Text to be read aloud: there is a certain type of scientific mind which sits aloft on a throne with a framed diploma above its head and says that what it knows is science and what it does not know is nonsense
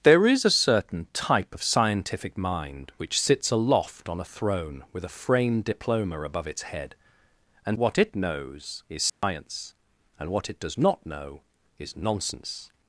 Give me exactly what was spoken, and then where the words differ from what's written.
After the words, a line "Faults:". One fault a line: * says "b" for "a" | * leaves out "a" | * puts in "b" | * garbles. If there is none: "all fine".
there is a certain type of scientific mind which sits aloft on a throne with a framed diploma above its head and what it knows is science and what it does not know is nonsense
Faults:
* leaves out "says that"